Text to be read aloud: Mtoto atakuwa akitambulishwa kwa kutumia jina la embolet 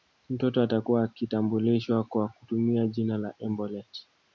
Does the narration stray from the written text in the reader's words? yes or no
no